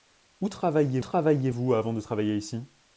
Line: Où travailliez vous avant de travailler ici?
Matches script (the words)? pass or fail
fail